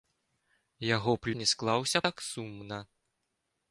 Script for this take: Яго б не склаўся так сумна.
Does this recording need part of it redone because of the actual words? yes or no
no